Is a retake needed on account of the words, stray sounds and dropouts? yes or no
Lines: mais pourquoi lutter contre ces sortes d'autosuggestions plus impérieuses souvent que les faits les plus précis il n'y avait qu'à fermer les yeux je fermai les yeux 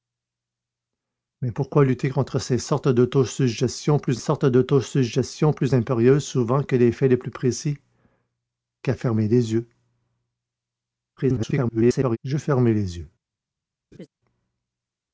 yes